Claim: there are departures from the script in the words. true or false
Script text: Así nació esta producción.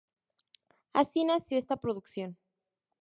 false